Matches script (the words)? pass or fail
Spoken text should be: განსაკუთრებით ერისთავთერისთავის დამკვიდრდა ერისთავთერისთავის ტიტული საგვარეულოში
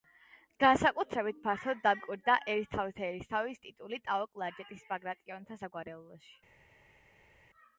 fail